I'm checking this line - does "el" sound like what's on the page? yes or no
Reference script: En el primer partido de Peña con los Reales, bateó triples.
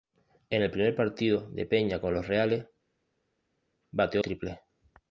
yes